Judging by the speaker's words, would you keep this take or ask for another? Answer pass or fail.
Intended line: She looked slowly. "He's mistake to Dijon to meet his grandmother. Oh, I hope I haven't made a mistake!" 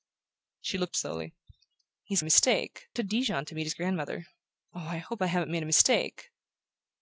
pass